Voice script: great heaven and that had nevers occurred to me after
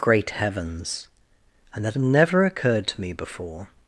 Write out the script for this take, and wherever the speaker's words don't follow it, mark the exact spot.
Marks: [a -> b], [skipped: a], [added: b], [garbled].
great [heaven -> heavens] and that had [nevers -> never] occurred to me [after -> before]